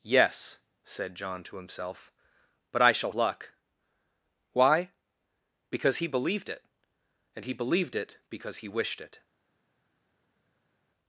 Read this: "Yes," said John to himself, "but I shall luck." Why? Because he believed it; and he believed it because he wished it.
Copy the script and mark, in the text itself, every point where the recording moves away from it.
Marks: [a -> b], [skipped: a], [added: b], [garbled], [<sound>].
"Yes," said John to himself, "but I shall luck." Why? Because he believed it; and he believed it because he wished it.